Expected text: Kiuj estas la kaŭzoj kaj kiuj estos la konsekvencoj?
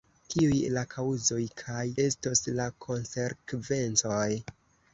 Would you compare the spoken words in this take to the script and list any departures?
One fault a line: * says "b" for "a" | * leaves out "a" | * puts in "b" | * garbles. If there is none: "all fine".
* leaves out "estas"
* leaves out "kiuj"